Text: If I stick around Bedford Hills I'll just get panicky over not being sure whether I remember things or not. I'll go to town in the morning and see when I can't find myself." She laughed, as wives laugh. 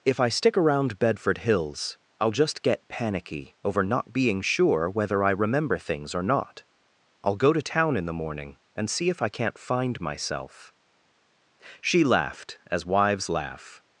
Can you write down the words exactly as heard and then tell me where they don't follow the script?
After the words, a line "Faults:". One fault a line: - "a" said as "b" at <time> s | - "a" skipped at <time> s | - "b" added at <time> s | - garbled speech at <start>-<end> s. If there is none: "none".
If I stick around Bedford Hills I'll just get panicky over not being sure whether I remember things or not. I'll go to town in the morning and see if I can't find myself." She laughed, as wives laugh.
Faults:
- "when" said as "if" at 9.1 s